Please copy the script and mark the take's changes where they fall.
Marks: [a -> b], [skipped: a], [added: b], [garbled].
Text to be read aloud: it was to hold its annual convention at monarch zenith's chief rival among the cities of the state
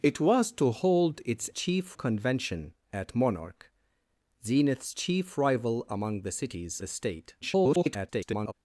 it was to hold its [annual -> chief] convention at monarch zenith's chief rival among the cities [skipped: of] the state [garbled]